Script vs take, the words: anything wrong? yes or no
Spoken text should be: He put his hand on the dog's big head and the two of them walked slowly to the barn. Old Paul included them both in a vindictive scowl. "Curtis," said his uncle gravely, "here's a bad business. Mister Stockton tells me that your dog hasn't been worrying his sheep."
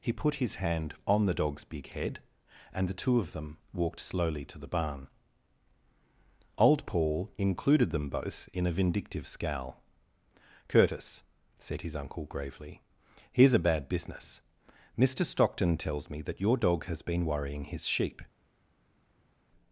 yes